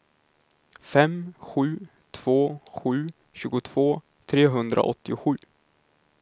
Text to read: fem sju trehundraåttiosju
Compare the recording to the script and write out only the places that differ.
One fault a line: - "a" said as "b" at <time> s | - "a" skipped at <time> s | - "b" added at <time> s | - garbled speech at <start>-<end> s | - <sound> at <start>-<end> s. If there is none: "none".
- "två sju tjugotvå" added at 2.1 s